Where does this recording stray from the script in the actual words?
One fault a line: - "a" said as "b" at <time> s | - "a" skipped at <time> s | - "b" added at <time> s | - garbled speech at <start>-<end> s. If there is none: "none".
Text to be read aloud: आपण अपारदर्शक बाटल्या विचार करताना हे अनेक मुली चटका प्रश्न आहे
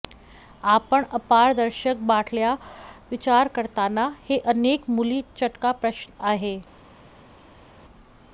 none